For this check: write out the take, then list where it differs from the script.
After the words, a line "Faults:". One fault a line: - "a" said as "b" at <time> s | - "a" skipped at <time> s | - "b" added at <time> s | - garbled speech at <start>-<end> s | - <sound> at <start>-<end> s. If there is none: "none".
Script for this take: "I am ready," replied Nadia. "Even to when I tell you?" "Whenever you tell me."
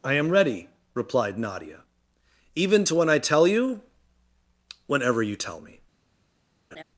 "I am ready," replied Nadia. "Even to when I tell you?" "Whenever you tell me."
Faults:
- laugh at 6.7-6.8 s